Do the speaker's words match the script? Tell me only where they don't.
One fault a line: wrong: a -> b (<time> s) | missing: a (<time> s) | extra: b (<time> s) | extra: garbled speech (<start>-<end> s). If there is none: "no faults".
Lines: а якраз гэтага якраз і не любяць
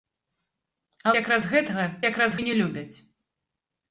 no faults